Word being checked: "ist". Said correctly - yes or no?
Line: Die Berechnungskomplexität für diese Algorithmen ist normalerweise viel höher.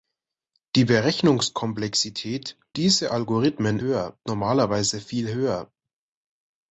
no